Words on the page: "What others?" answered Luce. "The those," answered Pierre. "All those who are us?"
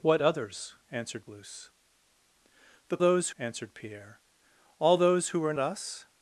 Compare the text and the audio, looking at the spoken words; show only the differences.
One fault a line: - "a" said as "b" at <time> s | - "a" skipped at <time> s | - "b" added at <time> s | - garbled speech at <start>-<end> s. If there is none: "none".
none